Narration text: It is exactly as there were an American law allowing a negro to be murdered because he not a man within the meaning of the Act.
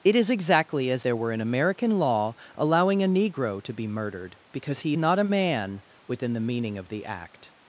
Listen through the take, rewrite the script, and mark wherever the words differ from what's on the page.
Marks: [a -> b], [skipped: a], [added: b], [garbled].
It is exactly as there were an American law allowing a negro to be murdered because he not a man within the meaning of the Act.